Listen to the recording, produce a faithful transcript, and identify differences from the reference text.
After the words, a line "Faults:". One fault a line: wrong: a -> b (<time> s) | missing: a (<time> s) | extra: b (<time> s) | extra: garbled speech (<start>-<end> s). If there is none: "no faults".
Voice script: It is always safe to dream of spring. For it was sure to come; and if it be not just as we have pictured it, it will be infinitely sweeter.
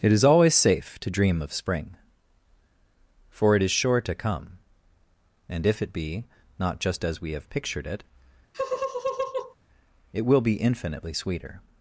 It is always safe to dream of spring. For it is sure to come; and if it be not just as we have pictured it, it will be infinitely sweeter.
Faults:
wrong: was -> is (3.6 s)